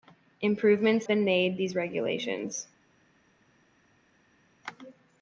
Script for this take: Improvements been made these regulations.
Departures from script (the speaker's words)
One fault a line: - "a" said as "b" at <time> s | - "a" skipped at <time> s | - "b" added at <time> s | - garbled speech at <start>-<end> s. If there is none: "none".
none